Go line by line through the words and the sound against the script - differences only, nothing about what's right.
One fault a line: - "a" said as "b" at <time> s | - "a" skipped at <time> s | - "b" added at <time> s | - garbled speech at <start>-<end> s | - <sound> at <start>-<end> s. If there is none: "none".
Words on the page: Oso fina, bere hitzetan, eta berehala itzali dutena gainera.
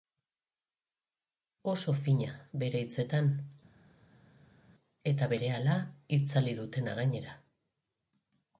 none